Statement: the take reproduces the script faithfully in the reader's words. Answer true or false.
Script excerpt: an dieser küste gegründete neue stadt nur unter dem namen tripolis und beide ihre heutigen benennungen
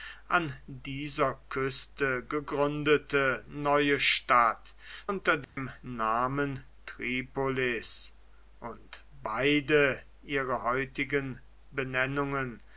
false